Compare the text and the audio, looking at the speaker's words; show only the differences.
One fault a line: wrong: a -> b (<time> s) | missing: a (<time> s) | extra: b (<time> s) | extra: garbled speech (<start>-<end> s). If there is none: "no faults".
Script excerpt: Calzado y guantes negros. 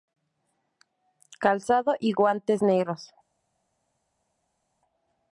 no faults